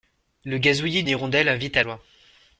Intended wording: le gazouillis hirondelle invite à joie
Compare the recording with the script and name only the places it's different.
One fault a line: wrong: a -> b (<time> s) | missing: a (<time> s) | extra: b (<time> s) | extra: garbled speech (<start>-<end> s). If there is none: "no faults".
no faults